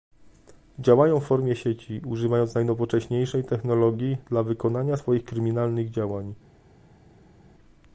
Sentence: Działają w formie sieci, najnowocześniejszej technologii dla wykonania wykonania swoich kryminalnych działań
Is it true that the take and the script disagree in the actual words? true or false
true